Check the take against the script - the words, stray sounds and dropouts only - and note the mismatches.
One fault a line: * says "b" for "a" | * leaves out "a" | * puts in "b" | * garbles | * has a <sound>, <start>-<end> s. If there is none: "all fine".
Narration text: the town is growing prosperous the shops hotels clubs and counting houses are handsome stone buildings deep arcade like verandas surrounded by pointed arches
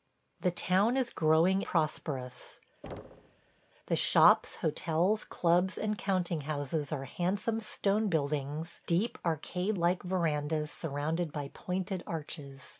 * has a thud, 2.8-3.6 s